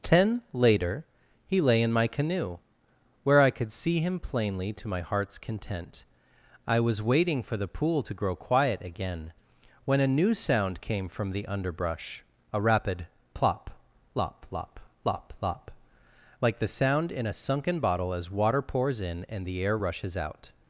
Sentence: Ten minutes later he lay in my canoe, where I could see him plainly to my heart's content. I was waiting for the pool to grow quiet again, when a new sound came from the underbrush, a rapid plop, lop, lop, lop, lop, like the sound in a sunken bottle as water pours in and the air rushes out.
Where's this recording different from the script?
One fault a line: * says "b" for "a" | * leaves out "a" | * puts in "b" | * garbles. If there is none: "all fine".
* leaves out "minutes"